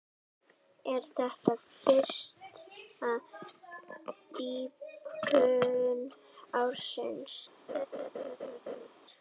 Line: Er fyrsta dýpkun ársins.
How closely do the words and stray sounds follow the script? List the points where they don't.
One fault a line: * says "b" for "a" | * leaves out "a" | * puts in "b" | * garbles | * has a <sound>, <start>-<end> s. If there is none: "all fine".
* puts in "þetta"
* has a laugh, 7.7-8.9 s